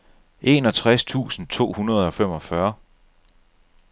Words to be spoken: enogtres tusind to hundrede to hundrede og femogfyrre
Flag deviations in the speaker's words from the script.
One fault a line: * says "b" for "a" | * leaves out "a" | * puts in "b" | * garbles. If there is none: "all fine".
* leaves out "to hundrede"